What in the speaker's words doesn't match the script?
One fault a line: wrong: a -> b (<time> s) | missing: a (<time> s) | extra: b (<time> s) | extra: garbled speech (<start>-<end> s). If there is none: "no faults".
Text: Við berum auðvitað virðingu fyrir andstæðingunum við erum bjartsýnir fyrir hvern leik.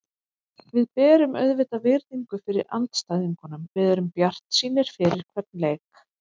no faults